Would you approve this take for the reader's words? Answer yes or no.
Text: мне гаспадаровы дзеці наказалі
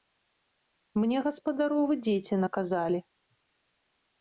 yes